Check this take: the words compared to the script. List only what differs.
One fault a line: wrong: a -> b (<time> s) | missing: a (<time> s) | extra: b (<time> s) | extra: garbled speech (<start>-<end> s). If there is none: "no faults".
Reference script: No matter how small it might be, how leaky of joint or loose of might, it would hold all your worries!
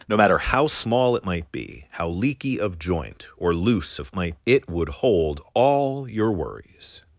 no faults